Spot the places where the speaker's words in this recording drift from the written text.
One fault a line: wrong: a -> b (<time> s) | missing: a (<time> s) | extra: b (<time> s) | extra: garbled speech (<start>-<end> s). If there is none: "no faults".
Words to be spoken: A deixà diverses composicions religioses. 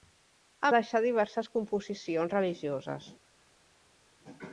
no faults